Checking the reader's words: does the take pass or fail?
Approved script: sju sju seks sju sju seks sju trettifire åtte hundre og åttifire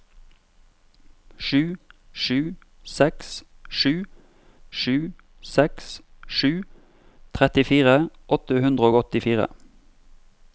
pass